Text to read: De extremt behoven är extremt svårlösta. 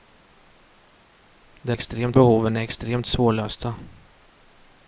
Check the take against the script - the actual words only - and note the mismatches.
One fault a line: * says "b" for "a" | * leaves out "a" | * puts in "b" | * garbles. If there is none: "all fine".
all fine